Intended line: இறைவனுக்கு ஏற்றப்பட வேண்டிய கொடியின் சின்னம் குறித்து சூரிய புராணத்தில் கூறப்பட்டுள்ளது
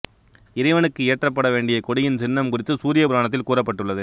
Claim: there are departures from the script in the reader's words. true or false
false